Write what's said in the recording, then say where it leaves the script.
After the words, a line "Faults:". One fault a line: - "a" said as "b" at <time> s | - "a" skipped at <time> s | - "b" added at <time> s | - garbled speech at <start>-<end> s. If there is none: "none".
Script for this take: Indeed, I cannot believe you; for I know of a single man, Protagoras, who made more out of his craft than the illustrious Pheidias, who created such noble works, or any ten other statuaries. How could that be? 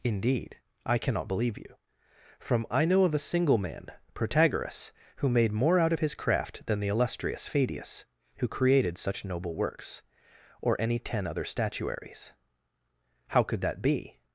Indeed, I cannot believe you; from I know of a single man, Protagoras, who made more out of his craft than the illustrious Pheidias, who created such noble works, or any ten other statuaries. How could that be?
Faults:
- "for" said as "from" at 2.4 s